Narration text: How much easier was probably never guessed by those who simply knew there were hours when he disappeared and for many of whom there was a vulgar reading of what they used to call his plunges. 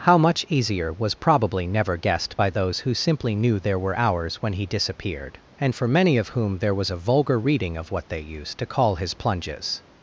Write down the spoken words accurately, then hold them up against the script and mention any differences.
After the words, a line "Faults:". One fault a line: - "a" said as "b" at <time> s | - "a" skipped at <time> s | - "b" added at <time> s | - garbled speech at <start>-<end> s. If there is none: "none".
How much easier was probably never guessed by those who simply knew there were hours when he disappeared and for many of whom there was a vulgar reading of what they used to call his plunges.
Faults:
none